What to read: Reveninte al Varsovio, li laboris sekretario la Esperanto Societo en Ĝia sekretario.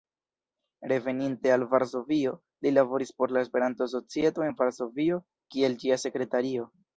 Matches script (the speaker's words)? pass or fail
fail